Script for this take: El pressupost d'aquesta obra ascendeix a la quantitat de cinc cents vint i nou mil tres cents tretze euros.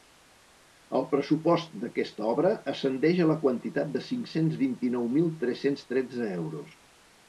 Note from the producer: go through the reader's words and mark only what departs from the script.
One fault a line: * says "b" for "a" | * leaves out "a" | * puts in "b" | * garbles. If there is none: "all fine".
all fine